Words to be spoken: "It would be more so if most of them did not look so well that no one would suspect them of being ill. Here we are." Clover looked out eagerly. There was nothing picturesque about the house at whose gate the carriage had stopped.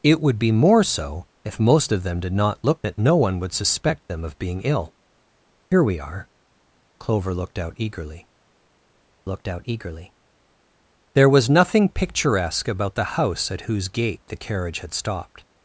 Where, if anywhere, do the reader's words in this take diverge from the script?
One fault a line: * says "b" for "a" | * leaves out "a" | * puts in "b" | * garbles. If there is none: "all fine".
* leaves out "so well"
* puts in "looked out eagerly"